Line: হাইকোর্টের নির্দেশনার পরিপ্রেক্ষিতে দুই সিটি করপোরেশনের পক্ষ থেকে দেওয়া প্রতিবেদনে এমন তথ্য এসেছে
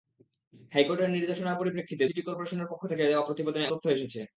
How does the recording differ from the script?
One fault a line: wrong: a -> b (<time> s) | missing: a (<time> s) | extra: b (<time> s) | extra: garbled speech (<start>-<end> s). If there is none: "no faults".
missing: দুই (2.0 s)
missing: এমন (3.7 s)